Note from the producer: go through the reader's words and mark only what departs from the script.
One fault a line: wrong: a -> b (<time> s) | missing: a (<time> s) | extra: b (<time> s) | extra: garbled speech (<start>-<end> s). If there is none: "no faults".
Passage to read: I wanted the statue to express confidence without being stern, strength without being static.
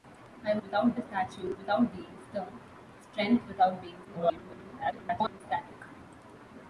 wrong: wanted -> without (0.6 s)
missing: to express confidence (1.5 s)
extra: garbled speech (4.0-5.4 s)